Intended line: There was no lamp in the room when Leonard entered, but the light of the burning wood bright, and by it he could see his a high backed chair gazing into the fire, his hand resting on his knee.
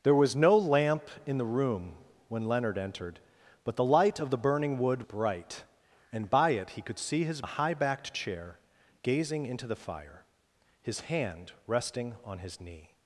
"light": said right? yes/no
yes